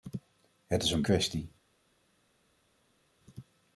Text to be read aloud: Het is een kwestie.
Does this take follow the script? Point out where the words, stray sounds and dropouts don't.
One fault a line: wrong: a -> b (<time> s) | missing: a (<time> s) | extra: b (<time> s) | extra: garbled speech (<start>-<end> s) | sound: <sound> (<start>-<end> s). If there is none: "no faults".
no faults